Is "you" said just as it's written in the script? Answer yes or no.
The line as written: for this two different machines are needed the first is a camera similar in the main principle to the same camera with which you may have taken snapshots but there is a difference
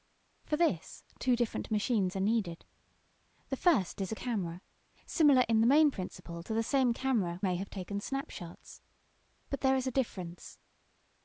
no